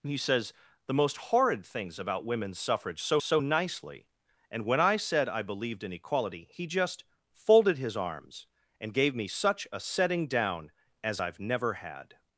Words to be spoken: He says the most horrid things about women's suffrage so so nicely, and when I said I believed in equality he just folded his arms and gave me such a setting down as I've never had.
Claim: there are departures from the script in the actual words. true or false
false